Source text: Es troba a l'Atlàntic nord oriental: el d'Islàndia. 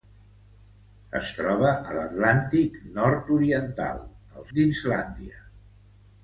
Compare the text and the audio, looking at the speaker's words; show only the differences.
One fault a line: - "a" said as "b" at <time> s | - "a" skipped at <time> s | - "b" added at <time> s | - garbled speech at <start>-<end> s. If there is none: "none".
none